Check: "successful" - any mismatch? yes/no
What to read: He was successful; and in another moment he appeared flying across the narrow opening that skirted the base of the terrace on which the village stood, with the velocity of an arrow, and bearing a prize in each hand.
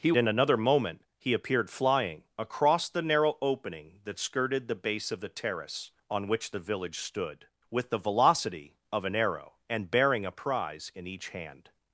yes